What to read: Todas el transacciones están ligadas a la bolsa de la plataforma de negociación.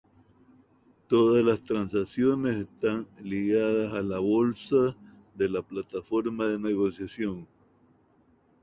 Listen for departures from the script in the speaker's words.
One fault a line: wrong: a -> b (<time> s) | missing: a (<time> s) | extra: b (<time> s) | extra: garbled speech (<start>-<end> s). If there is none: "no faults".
wrong: el -> las (1.4 s)